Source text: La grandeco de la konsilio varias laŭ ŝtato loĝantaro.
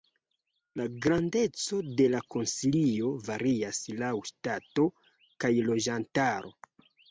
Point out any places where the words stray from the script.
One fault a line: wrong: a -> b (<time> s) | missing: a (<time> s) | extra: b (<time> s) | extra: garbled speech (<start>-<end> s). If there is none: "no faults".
extra: kaj (5.5 s)